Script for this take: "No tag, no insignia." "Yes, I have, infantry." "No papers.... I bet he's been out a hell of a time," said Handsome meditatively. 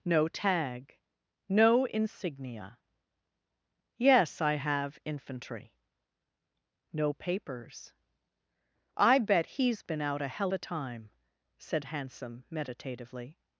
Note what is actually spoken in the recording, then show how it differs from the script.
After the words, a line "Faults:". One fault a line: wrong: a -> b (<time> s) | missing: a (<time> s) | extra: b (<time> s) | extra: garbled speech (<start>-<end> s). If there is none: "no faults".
"No tag, no insignia." "Yes, I have, infantry." "No papers.... I bet he's been out a hell a time," said Handsome meditatively.
Faults:
missing: of (10.5 s)